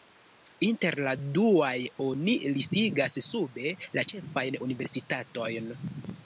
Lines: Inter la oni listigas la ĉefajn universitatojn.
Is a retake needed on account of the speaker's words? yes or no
yes